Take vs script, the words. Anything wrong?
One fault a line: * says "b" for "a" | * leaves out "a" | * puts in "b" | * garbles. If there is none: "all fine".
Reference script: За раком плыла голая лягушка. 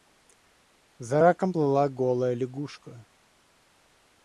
all fine